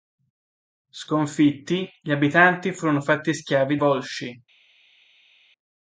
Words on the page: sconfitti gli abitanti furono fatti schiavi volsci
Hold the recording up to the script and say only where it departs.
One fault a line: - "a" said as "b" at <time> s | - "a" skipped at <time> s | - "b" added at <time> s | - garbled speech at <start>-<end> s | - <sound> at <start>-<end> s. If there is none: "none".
none